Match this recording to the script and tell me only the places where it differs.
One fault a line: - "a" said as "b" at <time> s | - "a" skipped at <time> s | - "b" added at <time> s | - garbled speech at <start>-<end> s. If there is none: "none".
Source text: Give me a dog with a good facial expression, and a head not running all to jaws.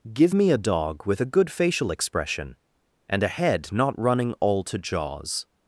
none